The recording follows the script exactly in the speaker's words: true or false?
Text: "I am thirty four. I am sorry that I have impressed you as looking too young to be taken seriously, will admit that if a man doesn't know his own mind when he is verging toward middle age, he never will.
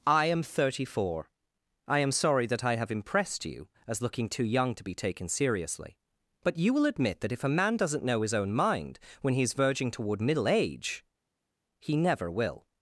false